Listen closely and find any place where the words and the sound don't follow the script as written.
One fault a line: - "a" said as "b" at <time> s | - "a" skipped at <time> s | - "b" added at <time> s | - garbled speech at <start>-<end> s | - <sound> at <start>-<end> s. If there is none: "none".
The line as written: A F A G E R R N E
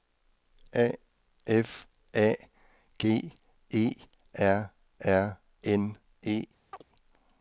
- chirp at 6.7-6.8 s